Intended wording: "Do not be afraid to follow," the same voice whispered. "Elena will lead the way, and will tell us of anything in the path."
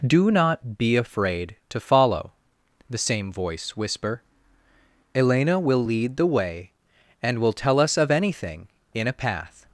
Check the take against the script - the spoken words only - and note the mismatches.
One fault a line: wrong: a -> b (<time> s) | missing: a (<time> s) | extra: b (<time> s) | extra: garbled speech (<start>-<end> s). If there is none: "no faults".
wrong: whispered -> whisper (3.8 s)
wrong: the -> a (9.1 s)